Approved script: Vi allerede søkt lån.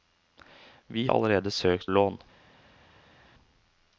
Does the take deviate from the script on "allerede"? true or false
false